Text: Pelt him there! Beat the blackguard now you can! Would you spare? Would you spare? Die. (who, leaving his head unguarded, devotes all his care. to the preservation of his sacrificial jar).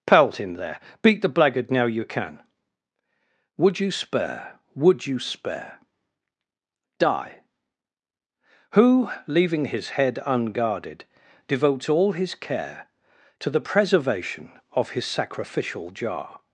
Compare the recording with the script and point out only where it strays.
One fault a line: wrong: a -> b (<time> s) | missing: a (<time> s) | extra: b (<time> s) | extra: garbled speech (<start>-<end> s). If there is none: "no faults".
no faults